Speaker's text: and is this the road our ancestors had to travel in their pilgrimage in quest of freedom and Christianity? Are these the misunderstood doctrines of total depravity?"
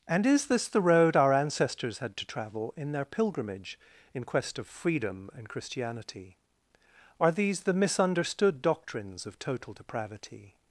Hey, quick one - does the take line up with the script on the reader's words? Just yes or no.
yes